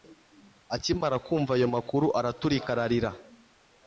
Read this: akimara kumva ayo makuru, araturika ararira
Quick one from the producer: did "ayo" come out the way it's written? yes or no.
yes